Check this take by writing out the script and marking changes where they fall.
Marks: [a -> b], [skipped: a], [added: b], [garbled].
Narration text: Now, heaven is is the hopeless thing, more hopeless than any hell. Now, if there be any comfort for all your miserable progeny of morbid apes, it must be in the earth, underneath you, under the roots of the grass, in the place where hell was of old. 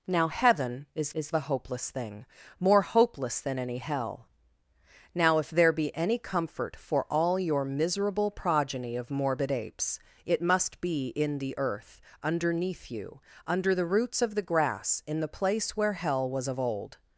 Now, heaven is is the hopeless thing, more hopeless than any hell. Now, if there be any comfort for all your miserable progeny of morbid apes, it must be in the earth, underneath you, under the roots of the grass, in the place where hell was of old.